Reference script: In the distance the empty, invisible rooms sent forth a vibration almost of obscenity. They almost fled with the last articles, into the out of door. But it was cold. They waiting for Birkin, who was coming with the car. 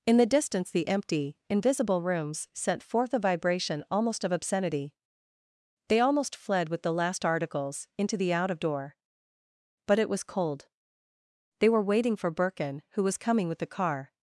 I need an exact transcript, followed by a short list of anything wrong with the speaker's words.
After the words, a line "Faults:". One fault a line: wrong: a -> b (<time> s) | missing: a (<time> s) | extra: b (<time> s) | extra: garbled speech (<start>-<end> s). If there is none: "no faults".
In the distance the empty, invisible rooms sent forth a vibration almost of obscenity. They almost fled with the last articles, into the out of door. But it was cold. They were waiting for Birkin, who was coming with the car.
Faults:
extra: were (11.7 s)